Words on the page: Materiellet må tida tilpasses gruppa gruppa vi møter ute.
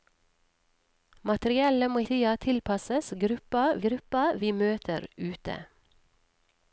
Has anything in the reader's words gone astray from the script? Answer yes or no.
no